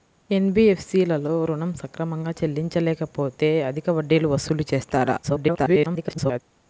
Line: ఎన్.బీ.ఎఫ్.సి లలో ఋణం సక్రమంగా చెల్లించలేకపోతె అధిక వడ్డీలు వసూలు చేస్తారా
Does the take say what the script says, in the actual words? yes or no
no